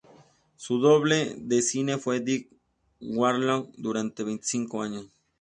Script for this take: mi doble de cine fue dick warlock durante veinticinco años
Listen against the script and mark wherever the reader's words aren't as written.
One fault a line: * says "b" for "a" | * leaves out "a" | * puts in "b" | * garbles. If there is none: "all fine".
* says "su" for "mi"